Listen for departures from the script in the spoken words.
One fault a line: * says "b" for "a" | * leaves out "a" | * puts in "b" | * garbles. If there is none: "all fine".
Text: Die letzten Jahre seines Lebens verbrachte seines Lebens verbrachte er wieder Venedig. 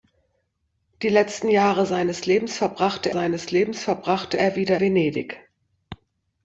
all fine